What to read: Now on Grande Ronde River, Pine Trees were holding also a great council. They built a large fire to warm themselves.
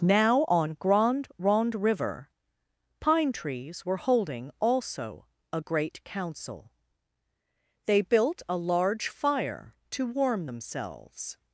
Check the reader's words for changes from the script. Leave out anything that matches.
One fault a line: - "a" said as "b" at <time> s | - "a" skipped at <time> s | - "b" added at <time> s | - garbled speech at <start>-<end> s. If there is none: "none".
none